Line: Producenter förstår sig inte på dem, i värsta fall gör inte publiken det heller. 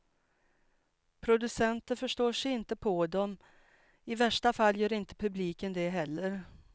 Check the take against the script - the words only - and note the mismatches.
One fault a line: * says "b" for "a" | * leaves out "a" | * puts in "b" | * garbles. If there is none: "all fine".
all fine